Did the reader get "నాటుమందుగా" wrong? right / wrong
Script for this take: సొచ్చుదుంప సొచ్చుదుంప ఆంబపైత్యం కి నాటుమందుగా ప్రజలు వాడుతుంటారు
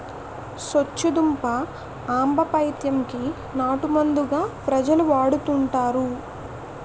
right